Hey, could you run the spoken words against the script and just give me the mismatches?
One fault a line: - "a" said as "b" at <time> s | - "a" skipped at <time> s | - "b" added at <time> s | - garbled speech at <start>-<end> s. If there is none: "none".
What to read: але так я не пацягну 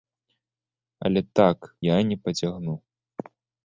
none